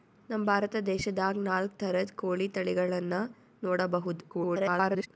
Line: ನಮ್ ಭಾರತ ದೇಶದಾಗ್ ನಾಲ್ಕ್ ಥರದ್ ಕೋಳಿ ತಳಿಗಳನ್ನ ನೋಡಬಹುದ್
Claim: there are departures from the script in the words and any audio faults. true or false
true